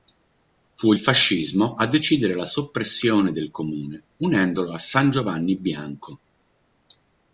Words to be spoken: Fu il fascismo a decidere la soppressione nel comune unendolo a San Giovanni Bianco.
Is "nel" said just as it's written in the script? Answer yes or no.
no